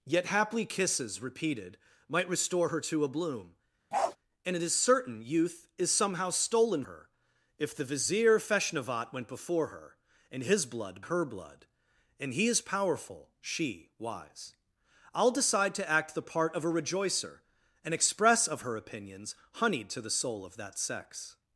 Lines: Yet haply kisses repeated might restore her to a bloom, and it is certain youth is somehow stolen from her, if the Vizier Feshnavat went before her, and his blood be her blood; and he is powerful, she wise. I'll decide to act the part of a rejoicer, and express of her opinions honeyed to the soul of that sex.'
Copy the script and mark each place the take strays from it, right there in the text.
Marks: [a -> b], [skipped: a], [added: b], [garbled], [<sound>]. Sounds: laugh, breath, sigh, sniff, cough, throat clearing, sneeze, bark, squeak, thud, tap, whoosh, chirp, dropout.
Yet haply kisses repeated might restore her to a bloom, [bark] and it is certain youth is somehow stolen [skipped: from] her, if the Vizier Feshnavat went before her, and his blood [skipped: be] her blood; and he is powerful, she wise. I'll decide to act the part of a rejoicer, and express of her opinions honeyed to the soul of that sex.'